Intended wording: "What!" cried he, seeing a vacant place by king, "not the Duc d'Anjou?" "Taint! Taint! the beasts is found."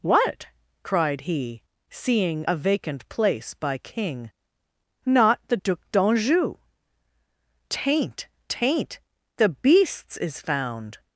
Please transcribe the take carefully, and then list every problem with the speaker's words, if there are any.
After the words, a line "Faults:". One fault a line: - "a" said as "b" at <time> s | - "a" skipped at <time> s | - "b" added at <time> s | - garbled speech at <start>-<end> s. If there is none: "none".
"What!" cried he, seeing a vacant place by king, "not the Duc d'Anjou?" "Taint! Taint! the beasts is found."
Faults:
none